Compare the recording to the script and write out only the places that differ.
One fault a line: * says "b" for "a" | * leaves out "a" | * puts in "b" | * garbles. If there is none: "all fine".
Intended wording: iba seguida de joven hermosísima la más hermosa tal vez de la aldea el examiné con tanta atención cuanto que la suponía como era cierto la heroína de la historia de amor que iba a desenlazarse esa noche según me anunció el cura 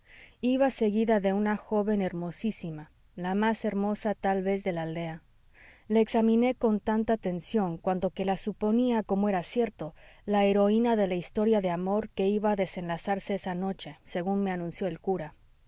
* puts in "una"
* says "la" for "el"